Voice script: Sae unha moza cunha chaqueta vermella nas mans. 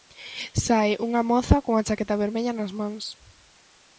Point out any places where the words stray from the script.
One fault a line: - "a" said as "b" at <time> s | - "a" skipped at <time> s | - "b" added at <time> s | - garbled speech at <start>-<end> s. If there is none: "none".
none